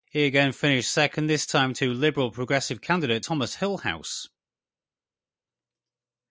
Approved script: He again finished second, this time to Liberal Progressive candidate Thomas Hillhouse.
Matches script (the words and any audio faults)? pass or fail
pass